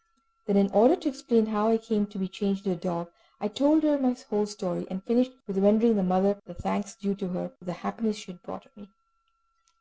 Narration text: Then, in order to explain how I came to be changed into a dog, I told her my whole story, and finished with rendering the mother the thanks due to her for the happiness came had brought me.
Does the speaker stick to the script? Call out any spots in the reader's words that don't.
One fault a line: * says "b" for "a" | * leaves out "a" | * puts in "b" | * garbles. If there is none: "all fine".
* says "she" for "came"